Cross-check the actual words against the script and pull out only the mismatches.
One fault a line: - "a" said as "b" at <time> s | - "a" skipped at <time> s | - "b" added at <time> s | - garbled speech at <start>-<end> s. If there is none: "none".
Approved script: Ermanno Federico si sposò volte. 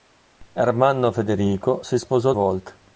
none